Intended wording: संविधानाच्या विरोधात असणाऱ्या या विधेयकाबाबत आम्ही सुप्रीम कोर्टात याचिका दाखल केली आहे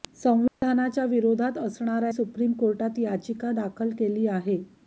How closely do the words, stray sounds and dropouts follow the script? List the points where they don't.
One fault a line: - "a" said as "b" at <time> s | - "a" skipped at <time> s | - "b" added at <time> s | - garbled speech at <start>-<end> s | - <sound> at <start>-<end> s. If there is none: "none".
- dropout at 0.5-0.6 s
- "या विधेयकाबाबत आम्ही" skipped at 2.1 s